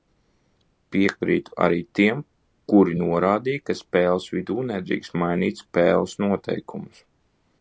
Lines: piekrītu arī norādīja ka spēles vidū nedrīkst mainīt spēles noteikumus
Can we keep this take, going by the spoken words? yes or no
no